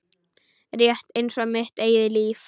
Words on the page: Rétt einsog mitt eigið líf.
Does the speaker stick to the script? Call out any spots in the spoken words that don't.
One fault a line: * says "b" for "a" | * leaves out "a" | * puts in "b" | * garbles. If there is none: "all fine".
all fine